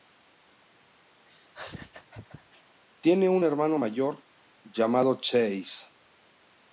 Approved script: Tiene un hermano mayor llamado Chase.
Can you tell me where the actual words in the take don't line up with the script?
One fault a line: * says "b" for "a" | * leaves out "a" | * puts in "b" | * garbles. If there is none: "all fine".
all fine